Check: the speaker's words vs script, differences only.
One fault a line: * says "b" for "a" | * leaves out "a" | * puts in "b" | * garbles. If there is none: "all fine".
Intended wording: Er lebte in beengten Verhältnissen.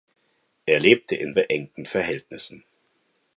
all fine